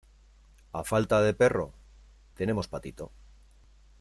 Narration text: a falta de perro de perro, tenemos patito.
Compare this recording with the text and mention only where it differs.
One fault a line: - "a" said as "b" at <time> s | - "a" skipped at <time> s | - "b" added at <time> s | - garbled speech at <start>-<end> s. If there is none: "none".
- "de perro" skipped at 1.7 s